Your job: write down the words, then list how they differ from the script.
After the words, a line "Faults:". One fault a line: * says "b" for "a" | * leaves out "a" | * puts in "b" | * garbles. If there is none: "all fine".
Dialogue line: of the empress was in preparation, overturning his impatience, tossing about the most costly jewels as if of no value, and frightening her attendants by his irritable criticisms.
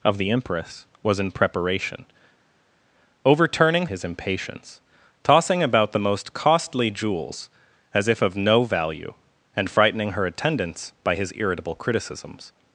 of the empress was in preparation, overturning his impatience, tossing about the most costly jewels as if of no value, and frightening her attendants by his irritable criticisms.
Faults:
all fine